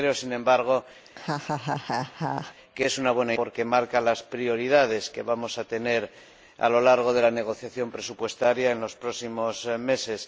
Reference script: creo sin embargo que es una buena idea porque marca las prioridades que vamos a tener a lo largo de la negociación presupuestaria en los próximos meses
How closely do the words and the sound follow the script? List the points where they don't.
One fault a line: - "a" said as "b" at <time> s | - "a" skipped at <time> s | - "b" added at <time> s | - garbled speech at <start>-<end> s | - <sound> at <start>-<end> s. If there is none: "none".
- laugh at 1.1-2.6 s
- "idea" skipped at 3.3 s